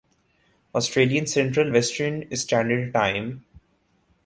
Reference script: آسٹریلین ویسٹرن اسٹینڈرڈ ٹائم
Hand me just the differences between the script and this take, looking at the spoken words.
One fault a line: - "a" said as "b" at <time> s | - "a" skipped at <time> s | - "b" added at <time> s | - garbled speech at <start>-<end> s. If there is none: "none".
- "سنٹرل" added at 1.2 s